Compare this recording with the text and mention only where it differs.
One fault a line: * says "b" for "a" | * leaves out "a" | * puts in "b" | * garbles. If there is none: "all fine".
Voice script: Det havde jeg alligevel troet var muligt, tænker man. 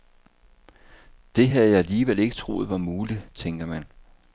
* puts in "ikke"